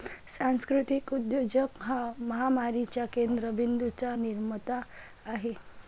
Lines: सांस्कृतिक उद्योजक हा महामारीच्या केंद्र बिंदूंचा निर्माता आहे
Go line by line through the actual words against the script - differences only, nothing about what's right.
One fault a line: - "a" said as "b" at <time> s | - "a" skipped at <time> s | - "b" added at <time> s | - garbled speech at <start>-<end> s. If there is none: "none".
none